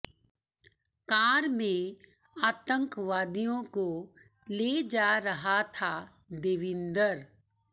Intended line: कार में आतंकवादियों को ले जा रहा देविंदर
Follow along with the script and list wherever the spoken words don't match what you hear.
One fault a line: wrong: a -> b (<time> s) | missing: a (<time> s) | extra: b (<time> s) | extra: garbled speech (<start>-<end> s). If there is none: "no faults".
extra: था (5.8 s)